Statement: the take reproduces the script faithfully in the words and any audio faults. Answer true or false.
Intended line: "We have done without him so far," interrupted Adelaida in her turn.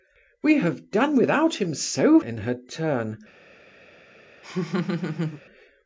false